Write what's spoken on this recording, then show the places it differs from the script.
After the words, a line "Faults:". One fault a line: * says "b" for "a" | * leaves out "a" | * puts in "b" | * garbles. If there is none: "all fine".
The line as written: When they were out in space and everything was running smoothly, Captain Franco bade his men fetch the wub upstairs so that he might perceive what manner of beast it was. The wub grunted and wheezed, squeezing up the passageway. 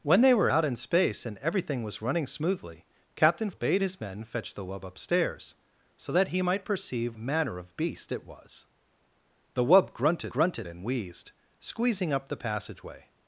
When they were out in space and everything was running smoothly, Captain Bade his men fetch the wub upstairs so that he might perceive manner of beast it was. The wub grunted grunted and wheezed, squeezing up the passageway.
Faults:
* leaves out "Franco"
* leaves out "what"
* puts in "grunted"